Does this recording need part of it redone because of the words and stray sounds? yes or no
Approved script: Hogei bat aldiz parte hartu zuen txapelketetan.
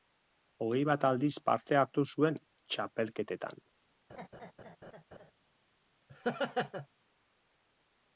yes